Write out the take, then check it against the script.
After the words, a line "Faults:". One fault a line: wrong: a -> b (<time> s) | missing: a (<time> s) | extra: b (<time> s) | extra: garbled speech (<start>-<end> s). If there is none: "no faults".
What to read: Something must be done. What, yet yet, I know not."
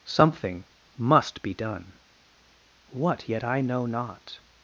Something must be done. What, yet, I know not."
Faults:
missing: yet (3.4 s)